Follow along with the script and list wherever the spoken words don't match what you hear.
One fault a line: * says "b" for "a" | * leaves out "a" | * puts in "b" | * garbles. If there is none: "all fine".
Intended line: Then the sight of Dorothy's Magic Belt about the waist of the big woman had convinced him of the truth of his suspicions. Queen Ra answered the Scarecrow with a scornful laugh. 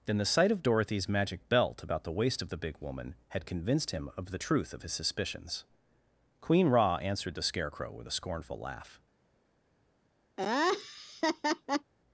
all fine